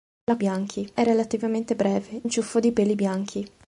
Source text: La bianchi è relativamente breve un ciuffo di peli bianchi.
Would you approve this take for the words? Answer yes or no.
yes